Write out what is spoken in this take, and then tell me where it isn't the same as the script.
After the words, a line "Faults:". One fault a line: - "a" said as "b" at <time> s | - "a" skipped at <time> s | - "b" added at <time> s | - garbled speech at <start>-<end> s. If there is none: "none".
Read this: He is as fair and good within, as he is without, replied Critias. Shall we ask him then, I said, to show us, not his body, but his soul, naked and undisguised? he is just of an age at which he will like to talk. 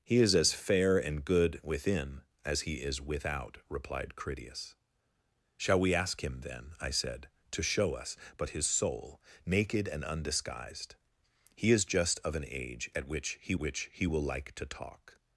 He is as fair and good within, as he is without, replied Critias. Shall we ask him then, I said, to show us, but his soul, naked and undisguised? he is just of an age at which he which he will like to talk.
Faults:
- "not his body" skipped at 8.2 s
- "which he" added at 13.6 s